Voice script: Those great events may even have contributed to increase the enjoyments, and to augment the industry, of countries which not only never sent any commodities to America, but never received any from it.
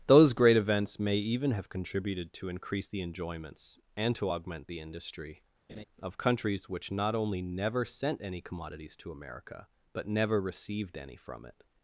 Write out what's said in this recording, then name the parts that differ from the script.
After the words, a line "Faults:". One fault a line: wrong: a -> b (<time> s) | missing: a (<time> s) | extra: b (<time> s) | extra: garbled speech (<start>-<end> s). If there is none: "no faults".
Those great events may even have contributed to increase the enjoyments, and to augment the industry, of countries which not only never sent any commodities to America, but never received any from it.
Faults:
no faults